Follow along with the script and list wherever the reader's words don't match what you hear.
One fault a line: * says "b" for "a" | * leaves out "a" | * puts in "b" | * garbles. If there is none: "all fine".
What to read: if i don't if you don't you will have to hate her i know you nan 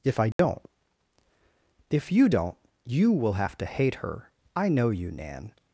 all fine